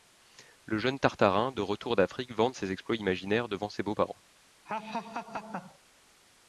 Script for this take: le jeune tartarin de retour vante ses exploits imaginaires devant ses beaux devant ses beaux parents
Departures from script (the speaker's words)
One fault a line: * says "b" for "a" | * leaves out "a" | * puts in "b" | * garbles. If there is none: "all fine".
* puts in "d'afrique"
* leaves out "devant ses beaux"